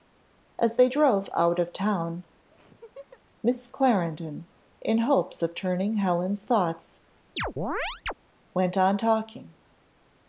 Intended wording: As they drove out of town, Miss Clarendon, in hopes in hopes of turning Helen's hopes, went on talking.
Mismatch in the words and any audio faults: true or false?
true